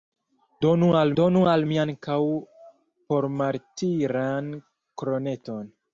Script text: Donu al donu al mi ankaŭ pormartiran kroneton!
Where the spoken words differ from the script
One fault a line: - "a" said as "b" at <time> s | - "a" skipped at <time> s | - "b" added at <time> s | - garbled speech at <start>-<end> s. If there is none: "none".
none